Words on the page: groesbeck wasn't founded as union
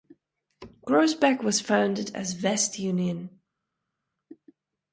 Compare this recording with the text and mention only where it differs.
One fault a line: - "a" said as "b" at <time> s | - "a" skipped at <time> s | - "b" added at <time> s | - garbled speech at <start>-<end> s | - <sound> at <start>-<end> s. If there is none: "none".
- "wasn't" said as "was" at 1.4 s
- "west" added at 2.4 s